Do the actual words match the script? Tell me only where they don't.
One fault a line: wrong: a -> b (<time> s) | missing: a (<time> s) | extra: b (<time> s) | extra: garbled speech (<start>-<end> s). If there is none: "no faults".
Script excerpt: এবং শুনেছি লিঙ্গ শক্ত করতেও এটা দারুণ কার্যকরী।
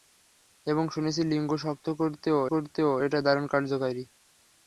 extra: করতেও (2.5 s)